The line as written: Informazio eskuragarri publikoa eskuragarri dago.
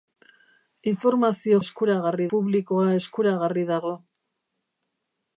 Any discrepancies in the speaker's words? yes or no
no